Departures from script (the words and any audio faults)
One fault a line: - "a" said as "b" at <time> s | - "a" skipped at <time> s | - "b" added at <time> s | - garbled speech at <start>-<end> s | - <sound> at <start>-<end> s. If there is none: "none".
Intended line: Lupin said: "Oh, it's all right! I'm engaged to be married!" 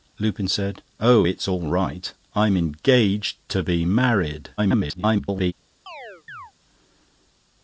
- garbled speech at 4.6-5.5 s
- chirp at 5.9-6.5 s